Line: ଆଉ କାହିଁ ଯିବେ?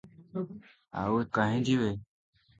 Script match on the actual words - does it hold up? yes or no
yes